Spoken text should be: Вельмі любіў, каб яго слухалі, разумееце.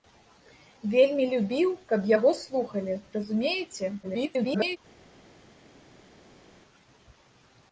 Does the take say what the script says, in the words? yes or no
no